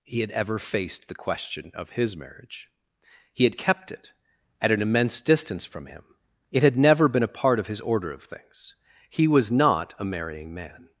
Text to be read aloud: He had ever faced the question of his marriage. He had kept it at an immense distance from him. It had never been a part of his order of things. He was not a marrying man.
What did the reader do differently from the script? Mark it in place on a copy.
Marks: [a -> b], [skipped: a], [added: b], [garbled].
He had ever faced the question of his marriage. He had kept it at an immense distance from him. It had never been a part of his order of things. He was not a marrying man.